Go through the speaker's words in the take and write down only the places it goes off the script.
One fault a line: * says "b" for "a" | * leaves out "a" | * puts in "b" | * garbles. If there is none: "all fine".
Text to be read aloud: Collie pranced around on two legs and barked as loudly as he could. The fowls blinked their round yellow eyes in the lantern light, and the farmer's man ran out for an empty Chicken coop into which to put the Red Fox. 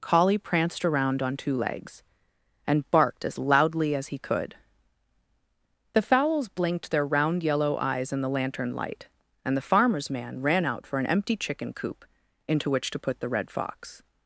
all fine